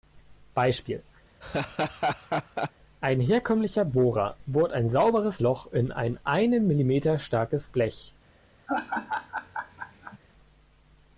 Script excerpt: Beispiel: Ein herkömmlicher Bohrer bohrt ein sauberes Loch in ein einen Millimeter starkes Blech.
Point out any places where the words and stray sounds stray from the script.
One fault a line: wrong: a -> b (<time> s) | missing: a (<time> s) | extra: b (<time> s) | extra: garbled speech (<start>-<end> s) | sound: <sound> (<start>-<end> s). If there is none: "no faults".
sound: laugh (1.4-2.7 s)
sound: laugh (8.7-10.2 s)